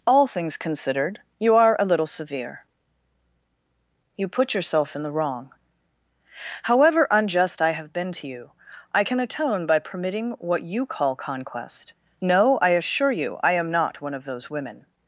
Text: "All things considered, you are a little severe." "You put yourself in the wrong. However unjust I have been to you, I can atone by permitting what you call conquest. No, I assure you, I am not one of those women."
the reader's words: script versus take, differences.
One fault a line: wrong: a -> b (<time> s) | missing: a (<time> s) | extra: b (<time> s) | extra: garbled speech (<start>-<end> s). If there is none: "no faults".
no faults